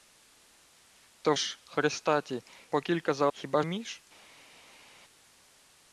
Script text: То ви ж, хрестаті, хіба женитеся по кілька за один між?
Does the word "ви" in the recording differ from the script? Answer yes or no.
yes